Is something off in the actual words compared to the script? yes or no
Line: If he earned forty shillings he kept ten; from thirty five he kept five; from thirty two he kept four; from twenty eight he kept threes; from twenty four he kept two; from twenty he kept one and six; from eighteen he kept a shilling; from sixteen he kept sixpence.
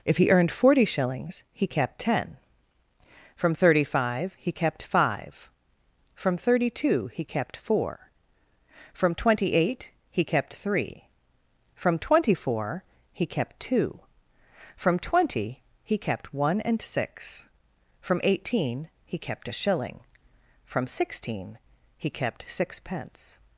yes